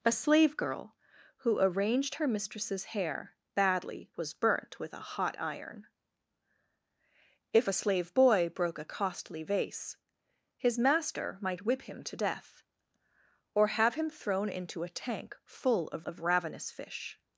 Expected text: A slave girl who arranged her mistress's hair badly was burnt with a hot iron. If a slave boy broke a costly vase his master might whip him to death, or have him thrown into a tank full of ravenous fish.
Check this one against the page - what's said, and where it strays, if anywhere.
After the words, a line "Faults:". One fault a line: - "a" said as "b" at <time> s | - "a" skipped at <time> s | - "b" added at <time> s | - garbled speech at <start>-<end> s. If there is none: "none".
A slave girl who arranged her mistress's hair badly was burnt with a hot iron. If a slave boy broke a costly vase his master might whip him to death, or have him thrown into a tank full of of ravenous fish.
Faults:
- "of" added at 16.0 s